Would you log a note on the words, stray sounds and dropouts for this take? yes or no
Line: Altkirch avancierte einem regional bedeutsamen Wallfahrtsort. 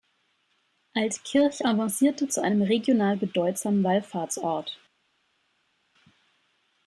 yes